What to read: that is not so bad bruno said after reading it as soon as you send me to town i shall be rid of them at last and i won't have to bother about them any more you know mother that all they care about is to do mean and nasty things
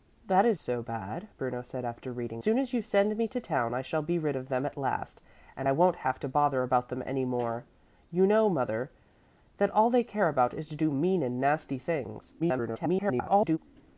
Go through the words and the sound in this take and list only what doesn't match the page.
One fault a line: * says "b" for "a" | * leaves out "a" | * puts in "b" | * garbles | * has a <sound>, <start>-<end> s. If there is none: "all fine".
* leaves out "not"
* leaves out "it as"
* garbles